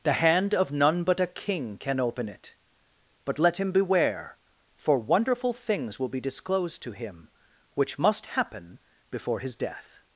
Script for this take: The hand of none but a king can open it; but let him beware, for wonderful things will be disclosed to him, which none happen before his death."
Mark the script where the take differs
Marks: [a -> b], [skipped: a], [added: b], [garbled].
The hand of none but a king can open it; but let him beware, for wonderful things will be disclosed to him, which [none -> must] happen before his death."